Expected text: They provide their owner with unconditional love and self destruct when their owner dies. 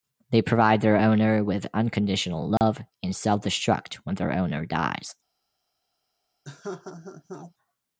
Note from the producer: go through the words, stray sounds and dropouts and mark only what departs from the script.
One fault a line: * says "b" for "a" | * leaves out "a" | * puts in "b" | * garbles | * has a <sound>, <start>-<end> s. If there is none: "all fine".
* has a dropout, 2.6-2.6 s
* has a laugh, 6.4-7.5 s